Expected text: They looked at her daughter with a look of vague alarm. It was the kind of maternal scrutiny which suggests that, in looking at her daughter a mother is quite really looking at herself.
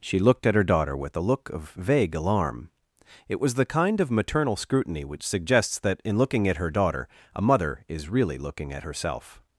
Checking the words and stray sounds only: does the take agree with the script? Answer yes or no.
no